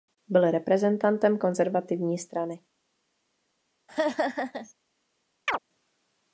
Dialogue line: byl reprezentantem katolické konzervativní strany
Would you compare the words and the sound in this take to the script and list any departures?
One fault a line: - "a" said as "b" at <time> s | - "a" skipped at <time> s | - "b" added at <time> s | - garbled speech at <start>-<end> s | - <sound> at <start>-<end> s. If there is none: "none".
- "katolické" skipped at 1.4 s
- laugh at 3.9-4.7 s
- chirp at 5.5-5.6 s